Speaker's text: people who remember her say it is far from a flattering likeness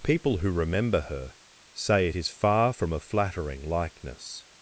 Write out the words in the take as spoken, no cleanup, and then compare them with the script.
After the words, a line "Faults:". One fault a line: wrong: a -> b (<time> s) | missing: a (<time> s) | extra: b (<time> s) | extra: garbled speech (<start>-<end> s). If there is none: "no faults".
people who remember her say it is far from a flattering likeness
Faults:
no faults